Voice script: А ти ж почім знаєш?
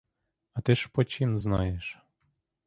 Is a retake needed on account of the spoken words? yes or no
no